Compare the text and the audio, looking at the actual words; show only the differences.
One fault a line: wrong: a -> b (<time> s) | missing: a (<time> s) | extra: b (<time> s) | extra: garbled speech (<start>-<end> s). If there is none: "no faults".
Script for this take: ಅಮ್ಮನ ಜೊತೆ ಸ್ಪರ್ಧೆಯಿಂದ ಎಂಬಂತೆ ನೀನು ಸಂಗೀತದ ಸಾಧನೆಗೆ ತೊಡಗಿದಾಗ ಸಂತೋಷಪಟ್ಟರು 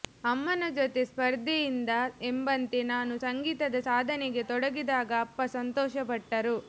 wrong: ನೀನು -> ನಾನು (2.9 s)
extra: ಅಪ್ಪ (5.2 s)